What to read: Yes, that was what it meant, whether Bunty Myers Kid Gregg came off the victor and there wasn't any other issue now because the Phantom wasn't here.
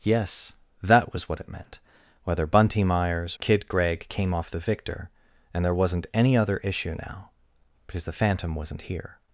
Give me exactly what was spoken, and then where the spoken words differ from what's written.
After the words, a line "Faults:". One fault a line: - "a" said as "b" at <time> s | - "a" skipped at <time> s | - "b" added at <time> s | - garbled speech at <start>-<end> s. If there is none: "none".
Yes, that was what it meant, whether Bunty Myers Kid Gregg came off the victor and there wasn't any other issue now because the Phantom wasn't here.
Faults:
none